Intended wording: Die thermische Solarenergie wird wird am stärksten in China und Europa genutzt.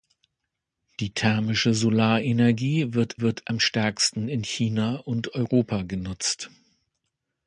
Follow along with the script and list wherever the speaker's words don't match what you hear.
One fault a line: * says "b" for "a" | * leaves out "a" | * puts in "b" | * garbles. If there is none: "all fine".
all fine